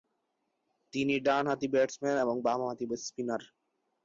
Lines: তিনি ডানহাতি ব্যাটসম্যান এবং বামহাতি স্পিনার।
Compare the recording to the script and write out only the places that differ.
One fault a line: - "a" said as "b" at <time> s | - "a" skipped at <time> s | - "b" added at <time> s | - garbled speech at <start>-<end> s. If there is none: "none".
none